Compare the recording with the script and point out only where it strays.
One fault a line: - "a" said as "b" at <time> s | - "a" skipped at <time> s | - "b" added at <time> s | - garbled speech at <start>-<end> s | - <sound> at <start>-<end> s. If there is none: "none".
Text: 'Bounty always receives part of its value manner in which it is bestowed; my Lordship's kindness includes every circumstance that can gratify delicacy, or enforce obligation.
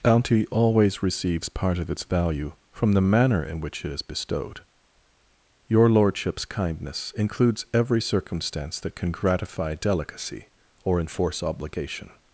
- "from the" added at 2.7 s
- "my" said as "your" at 5.7 s